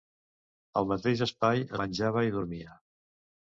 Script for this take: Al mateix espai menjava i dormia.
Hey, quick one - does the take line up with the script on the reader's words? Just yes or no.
yes